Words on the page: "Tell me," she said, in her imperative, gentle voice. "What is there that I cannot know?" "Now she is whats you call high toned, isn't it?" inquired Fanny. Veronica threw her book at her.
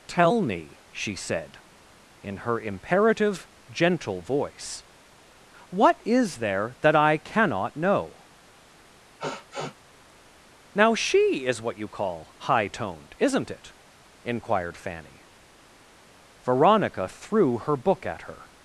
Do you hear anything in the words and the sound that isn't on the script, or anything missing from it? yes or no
yes